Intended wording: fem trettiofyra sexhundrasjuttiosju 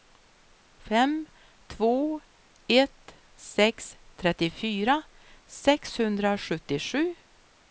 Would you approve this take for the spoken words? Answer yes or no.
no